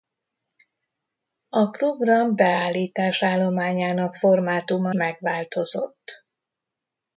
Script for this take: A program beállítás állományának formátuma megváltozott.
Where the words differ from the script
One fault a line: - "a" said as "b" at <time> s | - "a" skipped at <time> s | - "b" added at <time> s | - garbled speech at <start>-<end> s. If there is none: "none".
none